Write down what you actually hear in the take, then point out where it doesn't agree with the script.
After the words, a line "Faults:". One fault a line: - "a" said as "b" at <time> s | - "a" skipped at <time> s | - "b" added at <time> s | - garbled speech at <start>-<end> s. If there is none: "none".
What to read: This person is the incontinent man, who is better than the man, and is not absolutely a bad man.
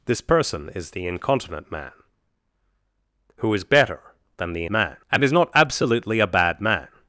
This person is the incontinent man, who is better than the man, and is not absolutely a bad man.
Faults:
none